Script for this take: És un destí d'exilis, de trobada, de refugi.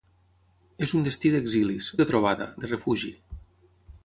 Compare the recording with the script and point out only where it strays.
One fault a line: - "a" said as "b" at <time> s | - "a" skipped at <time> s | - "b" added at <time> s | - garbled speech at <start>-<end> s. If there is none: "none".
none